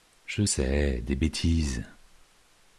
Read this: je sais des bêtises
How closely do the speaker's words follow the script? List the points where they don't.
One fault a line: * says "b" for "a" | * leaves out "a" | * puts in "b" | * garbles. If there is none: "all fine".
all fine